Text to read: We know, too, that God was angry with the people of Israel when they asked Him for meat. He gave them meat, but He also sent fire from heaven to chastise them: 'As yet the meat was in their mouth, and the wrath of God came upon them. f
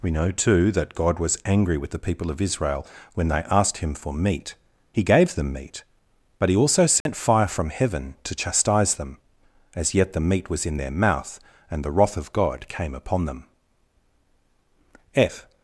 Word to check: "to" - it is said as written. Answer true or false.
true